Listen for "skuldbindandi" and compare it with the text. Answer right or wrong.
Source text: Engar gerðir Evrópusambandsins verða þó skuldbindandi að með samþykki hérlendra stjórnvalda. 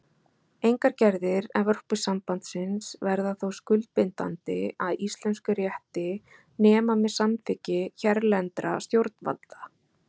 right